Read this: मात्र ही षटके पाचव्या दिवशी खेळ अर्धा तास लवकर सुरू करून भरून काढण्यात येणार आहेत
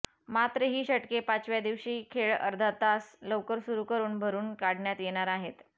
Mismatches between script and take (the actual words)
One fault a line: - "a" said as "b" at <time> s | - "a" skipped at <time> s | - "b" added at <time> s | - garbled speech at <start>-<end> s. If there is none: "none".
none